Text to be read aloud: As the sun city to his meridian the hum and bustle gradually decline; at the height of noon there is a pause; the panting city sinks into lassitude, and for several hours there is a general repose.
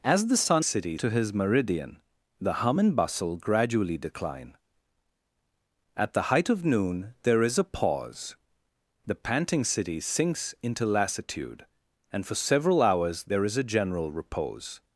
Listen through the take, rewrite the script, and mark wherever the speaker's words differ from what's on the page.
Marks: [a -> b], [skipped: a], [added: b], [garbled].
As the sun city to his meridian the hum and bustle gradually decline; at the height of noon there is a pause; the panting city sinks into lassitude, and for several hours there is a general repose.